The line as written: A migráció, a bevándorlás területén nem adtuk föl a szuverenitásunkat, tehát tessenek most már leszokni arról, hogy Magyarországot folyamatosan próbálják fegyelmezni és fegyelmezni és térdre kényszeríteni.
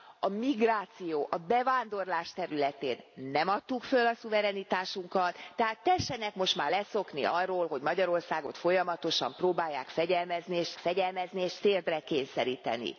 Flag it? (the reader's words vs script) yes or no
no